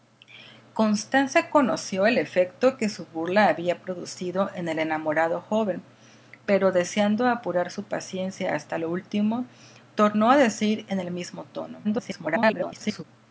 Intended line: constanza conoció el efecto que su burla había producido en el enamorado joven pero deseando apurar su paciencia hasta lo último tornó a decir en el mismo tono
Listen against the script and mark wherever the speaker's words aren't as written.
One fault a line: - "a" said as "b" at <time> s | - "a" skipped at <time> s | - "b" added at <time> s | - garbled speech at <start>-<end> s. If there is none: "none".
- garbled speech at 11.8-13.0 s